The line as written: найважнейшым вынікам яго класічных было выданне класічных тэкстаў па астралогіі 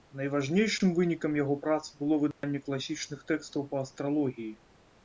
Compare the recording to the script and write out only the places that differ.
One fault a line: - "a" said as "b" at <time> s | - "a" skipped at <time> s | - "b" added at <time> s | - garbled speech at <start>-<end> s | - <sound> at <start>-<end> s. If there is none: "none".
- "класічных" said as "прац" at 1.7 s
- dropout at 2.3-2.4 s